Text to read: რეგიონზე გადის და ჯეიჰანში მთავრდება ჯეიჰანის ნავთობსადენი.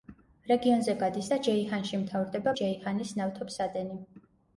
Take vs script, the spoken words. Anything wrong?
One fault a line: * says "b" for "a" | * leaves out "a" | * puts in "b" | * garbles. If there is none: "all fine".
all fine